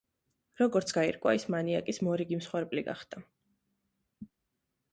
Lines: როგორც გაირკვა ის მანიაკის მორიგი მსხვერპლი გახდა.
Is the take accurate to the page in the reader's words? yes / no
yes